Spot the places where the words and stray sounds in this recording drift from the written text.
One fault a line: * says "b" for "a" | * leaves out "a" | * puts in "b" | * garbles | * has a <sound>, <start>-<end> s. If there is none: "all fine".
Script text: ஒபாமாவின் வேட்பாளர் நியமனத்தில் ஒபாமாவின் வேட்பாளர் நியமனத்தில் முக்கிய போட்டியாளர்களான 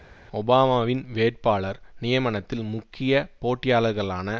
* leaves out "ஒபாமாவின் வேட்பாளர் நியமனத்தில்"